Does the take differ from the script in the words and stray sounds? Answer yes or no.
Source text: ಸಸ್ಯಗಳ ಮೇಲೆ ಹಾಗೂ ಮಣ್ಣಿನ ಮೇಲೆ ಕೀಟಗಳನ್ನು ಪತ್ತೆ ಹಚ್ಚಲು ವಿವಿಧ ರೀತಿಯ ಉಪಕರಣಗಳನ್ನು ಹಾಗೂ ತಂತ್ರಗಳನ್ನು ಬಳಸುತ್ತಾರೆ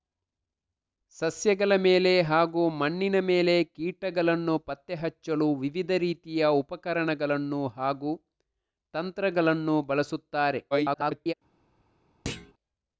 yes